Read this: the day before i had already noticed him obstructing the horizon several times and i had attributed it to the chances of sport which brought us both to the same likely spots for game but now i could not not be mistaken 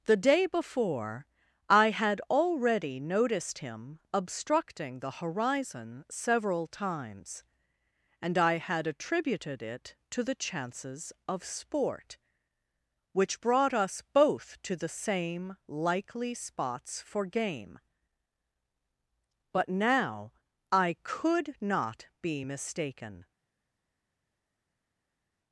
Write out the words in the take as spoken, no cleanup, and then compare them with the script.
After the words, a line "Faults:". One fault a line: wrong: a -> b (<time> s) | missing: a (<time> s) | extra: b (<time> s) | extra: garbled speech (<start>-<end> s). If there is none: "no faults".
the day before i had already noticed him obstructing the horizon several times and i had attributed it to the chances of sport which brought us both to the same likely spots for game but now i could not be mistaken
Faults:
missing: not (22.1 s)